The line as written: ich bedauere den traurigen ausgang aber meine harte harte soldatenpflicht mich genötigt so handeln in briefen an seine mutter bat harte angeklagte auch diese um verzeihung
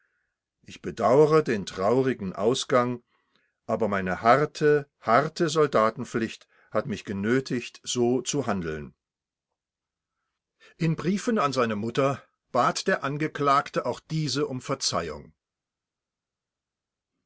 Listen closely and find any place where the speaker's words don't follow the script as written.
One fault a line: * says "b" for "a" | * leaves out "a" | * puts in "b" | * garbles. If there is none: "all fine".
* puts in "hat"
* puts in "zu"
* says "der" for "harte"